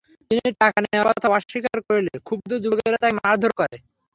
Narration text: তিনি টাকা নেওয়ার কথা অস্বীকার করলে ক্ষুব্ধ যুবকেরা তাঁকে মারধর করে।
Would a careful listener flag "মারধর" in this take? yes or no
no